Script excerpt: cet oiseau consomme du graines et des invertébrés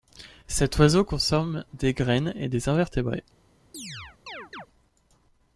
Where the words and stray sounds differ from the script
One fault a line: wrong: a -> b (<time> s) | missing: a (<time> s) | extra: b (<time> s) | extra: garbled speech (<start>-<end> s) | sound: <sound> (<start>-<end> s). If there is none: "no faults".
wrong: du -> des (1.8 s)
sound: chirp (3.7-4.7 s)